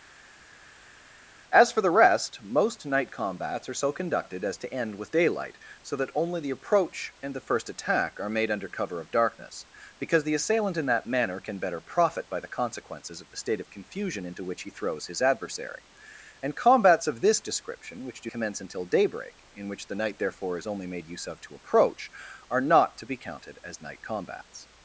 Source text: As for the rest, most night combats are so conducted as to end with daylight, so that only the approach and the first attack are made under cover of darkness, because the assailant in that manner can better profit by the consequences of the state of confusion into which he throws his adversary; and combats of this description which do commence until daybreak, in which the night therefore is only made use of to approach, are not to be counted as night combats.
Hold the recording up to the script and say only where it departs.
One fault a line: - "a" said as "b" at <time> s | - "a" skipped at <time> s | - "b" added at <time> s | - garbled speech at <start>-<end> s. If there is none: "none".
none